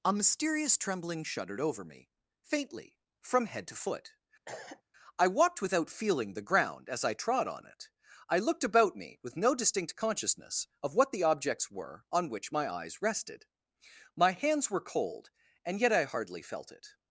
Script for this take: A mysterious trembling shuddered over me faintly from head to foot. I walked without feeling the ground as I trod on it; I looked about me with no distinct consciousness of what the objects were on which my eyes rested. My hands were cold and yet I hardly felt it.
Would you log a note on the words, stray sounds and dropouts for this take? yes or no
yes